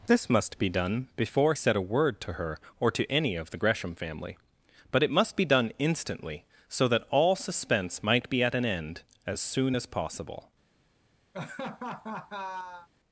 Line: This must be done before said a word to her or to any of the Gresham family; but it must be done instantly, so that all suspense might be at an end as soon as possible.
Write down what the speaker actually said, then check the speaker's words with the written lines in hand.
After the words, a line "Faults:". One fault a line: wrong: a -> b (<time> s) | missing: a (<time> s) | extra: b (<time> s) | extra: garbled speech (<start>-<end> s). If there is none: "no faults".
This must be done before said a word to her or to any of the Gresham family; but it must be done instantly, so that all suspense might be at an end as soon as possible.
Faults:
no faults